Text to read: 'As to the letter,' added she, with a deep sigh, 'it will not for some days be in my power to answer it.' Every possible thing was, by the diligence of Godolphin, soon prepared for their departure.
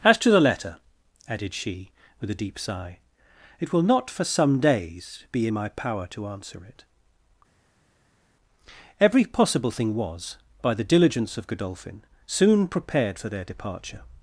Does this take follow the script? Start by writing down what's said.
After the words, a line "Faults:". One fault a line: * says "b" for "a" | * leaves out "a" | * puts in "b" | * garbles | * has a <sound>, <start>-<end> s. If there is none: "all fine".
'As to the letter,' added she, with a deep sigh, 'it will not for some days be in my power to answer it.' Every possible thing was, by the diligence of Godolphin, soon prepared for their departure.
Faults:
all fine